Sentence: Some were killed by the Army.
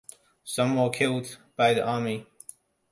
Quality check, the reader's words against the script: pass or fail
pass